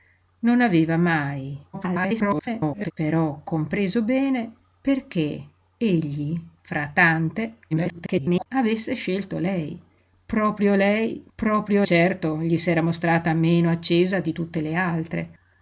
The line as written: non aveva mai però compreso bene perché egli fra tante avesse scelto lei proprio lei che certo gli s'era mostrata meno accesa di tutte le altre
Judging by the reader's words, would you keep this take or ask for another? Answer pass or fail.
fail